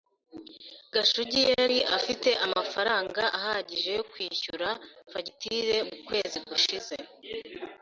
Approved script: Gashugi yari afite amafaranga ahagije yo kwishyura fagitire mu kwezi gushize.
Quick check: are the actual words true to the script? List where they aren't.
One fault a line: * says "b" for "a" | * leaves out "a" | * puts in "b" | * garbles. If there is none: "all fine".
all fine